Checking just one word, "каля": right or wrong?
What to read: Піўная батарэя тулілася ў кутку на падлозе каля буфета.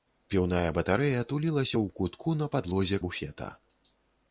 wrong